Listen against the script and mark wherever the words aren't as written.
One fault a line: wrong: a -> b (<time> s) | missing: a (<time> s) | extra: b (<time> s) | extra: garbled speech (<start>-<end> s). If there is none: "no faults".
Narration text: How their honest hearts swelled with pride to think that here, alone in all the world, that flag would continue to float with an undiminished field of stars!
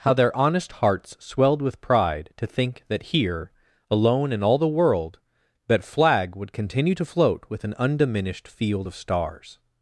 no faults